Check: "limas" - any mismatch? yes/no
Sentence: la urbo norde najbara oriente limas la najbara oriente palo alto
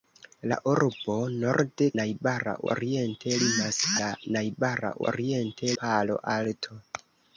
no